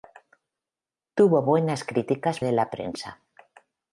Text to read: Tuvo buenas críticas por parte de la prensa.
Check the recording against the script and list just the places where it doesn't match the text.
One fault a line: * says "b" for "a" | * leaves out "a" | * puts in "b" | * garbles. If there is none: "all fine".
* leaves out "por parte"